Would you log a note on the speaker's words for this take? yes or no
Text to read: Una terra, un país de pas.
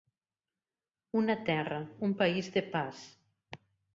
no